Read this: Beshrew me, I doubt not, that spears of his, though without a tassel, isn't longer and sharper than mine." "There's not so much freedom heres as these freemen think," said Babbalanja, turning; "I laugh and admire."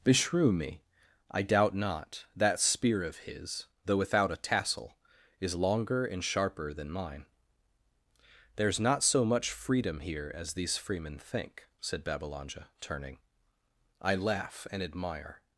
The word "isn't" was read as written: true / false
false